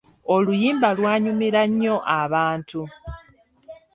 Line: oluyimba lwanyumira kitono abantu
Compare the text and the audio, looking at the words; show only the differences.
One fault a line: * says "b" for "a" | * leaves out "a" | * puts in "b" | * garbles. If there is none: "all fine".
* says "nnyo" for "kitono"